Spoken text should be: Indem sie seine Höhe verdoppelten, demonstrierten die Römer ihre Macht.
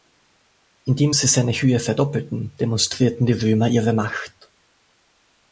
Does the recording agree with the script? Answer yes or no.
yes